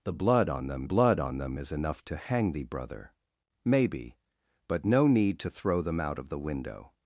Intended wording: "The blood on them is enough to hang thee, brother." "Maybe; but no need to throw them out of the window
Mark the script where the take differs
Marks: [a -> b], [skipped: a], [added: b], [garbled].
"The blood on them [added: blood on them] is enough to hang thee, brother." "Maybe; but no need to throw them out of the window